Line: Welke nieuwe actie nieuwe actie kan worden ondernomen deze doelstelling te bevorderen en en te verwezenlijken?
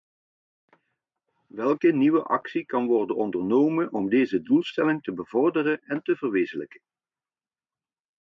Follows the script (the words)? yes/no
no